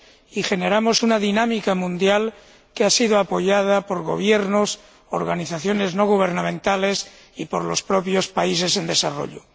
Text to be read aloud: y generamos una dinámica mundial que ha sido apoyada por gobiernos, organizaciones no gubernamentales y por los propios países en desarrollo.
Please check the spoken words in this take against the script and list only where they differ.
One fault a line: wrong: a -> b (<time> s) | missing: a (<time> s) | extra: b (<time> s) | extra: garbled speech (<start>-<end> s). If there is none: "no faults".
no faults